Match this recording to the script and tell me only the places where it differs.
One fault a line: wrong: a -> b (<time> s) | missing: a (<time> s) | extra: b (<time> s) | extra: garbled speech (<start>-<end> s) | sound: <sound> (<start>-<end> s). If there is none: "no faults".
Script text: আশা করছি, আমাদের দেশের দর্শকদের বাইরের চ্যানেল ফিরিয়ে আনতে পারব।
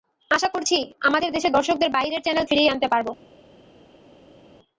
no faults